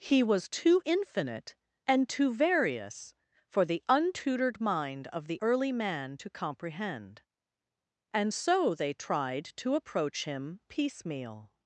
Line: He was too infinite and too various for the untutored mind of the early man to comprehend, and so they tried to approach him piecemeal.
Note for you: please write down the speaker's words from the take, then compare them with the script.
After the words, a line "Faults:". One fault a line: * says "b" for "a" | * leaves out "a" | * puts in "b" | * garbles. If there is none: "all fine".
He was too infinite and too various for the untutored mind of the early man to comprehend, and so they tried to approach him piecemeal.
Faults:
all fine